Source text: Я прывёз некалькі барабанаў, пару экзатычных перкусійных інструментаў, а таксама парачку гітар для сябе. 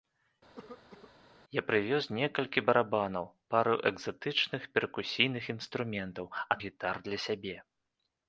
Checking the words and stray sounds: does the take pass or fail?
fail